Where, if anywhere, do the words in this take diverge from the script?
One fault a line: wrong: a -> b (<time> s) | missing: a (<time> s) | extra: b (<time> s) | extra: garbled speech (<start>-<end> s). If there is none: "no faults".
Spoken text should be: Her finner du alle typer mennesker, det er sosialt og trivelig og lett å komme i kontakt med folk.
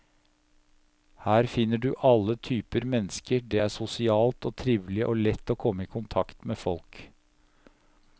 no faults